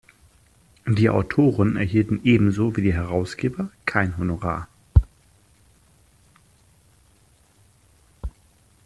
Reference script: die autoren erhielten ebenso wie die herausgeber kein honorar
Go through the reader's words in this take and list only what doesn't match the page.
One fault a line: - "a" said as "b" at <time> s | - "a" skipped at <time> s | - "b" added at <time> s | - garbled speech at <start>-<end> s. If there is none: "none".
none